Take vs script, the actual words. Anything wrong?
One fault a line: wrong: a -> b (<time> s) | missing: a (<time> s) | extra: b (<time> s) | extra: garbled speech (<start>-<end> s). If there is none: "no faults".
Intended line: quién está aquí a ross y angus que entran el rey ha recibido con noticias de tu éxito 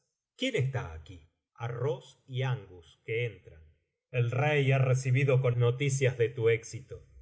no faults